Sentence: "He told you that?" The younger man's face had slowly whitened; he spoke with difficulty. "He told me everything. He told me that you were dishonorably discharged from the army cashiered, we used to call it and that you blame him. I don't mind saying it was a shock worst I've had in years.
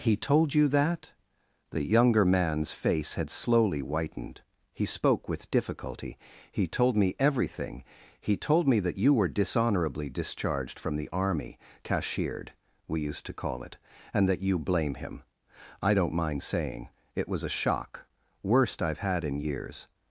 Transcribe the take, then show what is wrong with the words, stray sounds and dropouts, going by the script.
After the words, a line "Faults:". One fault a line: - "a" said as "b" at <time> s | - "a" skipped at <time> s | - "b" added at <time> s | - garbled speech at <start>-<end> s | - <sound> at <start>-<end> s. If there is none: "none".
"He told you that?" The younger man's face had slowly whitened; he spoke with difficulty. "He told me everything. He told me that you were dishonorably discharged from the army cashiered, we used to call it and that you blame him. I don't mind saying it was a shock worst I've had in years.
Faults:
none